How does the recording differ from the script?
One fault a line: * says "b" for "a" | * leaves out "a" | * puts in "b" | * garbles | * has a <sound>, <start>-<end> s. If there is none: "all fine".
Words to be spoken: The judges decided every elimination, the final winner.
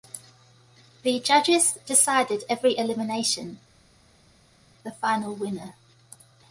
all fine